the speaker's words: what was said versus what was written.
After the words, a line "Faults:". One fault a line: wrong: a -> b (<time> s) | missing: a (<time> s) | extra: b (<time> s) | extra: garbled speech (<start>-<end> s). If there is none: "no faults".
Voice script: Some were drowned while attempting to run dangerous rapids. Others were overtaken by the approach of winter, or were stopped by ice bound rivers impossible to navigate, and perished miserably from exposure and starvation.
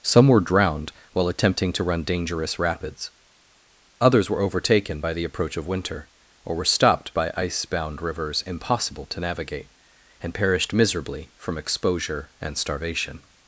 Some were drowned while attempting to run dangerous rapids. Others were overtaken by the approach of winter, or were stopped by ice bound rivers impossible to navigate, and perished miserably from exposure and starvation.
Faults:
no faults